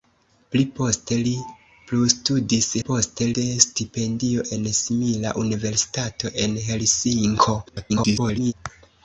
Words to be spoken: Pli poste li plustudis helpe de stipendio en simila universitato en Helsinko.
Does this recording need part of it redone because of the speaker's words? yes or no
yes